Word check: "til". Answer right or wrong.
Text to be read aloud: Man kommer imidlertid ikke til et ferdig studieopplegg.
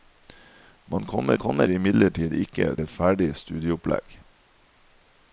wrong